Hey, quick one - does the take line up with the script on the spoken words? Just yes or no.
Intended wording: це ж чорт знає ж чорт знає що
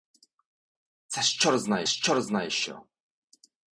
yes